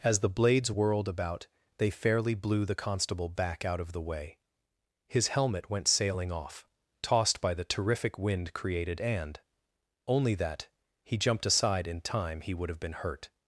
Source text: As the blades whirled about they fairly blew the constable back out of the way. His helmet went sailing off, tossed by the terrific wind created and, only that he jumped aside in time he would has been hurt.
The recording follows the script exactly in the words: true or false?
false